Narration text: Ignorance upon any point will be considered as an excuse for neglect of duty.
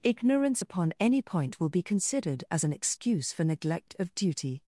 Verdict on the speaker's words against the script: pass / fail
pass